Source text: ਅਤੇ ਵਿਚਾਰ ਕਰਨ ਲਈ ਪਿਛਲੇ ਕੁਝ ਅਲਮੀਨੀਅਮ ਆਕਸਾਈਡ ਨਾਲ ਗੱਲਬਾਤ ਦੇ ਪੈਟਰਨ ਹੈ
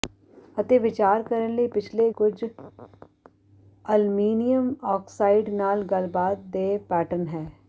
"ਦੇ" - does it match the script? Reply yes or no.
yes